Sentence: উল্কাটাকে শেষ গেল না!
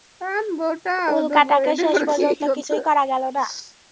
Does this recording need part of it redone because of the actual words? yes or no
yes